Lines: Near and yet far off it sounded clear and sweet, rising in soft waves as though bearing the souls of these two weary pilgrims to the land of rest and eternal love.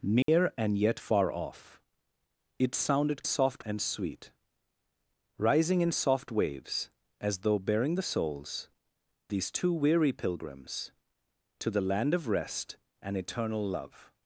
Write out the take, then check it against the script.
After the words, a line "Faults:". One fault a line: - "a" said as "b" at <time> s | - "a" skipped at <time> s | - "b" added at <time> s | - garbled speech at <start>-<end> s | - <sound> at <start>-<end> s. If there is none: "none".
Near and yet far off it sounded soft and sweet, rising in soft waves as though bearing the souls these two weary pilgrims to the land of rest and eternal love.
Faults:
- dropout at 0.2-0.3 s
- "clear" said as "soft" at 3.2 s
- "of" skipped at 8.7 s